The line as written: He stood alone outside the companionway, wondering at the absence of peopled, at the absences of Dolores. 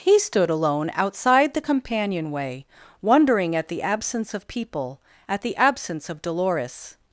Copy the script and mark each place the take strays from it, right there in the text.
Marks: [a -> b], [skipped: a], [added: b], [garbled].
He stood alone outside the companionway, wondering at the absence of [peopled, -> people] at the [absences -> absence] of Dolores.